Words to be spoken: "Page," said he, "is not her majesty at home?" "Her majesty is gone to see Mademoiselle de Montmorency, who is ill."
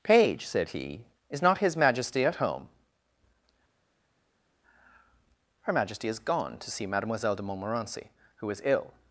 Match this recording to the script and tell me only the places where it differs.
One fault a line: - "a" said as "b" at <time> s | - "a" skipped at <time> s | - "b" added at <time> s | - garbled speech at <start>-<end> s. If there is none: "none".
- "her" said as "his" at 1.6 s